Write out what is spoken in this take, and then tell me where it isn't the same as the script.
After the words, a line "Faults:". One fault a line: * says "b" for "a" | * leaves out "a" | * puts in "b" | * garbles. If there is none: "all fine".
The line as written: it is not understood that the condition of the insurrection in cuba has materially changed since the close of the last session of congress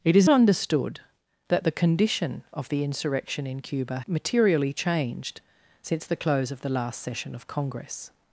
it is understood that the condition of the insurrection in cuba materially changed since the close of the last session of congress
Faults:
* leaves out "not"
* leaves out "has"